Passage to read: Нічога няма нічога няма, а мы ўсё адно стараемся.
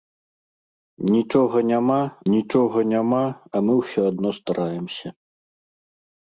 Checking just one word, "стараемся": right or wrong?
right